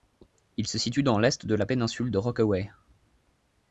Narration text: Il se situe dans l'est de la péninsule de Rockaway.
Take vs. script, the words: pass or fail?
pass